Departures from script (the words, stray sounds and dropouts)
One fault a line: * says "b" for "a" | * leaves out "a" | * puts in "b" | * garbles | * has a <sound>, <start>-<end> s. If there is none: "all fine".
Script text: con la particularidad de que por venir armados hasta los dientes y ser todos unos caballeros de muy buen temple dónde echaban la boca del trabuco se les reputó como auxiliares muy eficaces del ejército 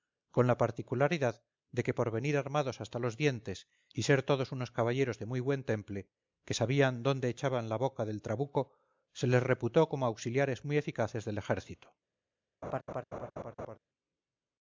* puts in "que sabían"
* has a laugh, 12.6-13.8 s